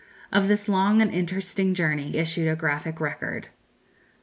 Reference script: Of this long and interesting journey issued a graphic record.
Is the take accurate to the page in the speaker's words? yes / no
yes